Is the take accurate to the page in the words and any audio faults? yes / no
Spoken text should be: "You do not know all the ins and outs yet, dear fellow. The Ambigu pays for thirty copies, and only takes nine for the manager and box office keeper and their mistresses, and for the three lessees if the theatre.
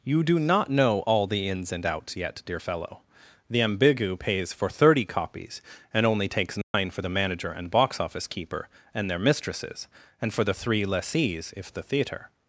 no